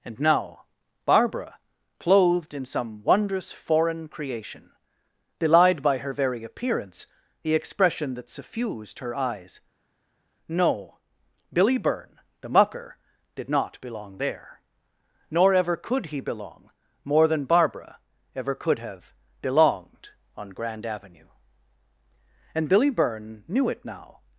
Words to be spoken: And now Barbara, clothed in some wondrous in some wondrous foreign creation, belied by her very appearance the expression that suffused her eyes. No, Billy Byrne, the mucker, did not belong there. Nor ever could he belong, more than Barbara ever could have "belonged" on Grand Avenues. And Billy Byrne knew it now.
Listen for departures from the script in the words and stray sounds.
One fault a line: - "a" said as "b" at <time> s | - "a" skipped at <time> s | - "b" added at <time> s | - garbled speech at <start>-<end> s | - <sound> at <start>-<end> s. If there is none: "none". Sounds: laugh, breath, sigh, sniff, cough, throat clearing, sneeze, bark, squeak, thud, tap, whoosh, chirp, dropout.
- "in some wondrous" skipped at 3.5 s
- "Avenues" said as "Avenue" at 20.9 s